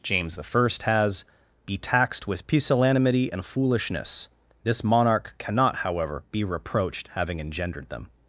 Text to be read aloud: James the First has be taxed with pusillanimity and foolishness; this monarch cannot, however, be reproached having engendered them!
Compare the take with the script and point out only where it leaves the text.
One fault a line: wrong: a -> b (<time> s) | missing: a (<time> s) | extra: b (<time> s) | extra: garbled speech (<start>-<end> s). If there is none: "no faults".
no faults